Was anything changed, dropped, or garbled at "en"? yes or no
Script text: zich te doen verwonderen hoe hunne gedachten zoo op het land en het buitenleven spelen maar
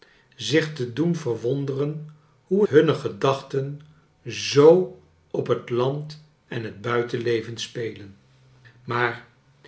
no